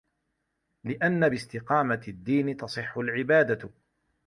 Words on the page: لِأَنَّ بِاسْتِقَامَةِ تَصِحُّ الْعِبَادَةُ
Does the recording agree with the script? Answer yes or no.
no